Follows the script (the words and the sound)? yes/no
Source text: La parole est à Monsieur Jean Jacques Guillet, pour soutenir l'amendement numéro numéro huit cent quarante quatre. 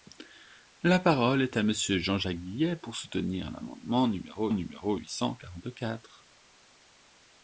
yes